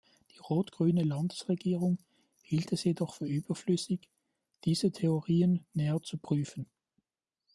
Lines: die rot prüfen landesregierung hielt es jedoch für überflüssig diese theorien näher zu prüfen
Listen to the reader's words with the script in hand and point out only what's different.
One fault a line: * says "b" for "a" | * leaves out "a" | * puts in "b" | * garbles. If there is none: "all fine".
* says "grüne" for "prüfen"